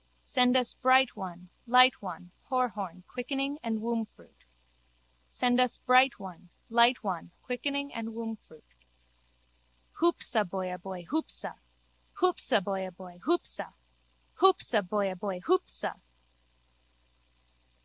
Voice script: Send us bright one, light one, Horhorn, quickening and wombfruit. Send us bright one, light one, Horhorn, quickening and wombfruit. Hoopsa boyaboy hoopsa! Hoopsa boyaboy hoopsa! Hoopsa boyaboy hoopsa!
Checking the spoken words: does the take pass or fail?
fail